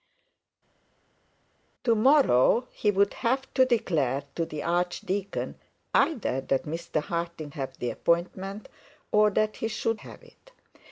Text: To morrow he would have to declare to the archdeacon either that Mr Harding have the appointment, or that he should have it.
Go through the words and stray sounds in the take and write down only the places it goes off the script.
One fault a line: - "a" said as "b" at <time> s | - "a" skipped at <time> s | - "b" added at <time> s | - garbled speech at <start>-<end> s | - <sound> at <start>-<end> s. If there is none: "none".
none